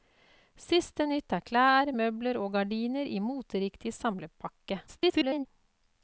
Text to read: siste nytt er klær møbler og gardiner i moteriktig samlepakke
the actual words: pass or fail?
fail